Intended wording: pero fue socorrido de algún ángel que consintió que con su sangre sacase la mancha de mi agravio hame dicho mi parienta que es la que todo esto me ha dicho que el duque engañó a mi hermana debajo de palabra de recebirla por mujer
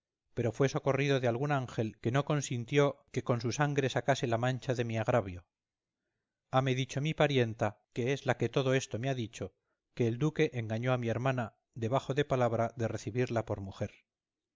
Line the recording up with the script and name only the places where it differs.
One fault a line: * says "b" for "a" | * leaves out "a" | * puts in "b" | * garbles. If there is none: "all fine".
* puts in "no"